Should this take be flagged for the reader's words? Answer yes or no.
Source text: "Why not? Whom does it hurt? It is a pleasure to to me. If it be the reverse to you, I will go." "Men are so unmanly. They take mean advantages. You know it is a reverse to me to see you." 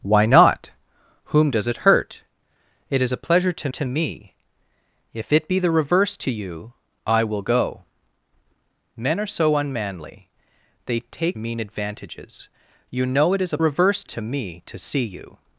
no